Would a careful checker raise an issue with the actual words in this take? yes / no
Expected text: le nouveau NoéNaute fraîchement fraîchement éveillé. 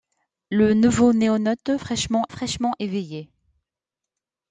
no